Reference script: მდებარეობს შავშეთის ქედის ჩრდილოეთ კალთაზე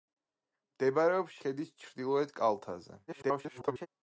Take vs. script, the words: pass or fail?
fail